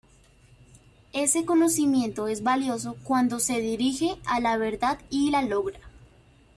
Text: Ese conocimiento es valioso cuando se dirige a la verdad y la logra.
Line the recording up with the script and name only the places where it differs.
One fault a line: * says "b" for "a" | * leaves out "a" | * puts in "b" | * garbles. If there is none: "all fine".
all fine